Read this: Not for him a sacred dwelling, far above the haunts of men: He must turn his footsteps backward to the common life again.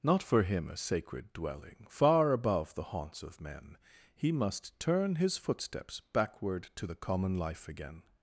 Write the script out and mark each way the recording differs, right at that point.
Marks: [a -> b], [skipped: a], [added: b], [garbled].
Not for him a sacred dwelling, far above the haunts of men: He must turn his footsteps backward to the common life again.